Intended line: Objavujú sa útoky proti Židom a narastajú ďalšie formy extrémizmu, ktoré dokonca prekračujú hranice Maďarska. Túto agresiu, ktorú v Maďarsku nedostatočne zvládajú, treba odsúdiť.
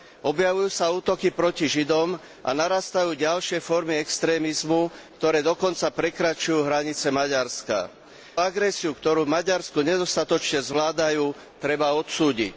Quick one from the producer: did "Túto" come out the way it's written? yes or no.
no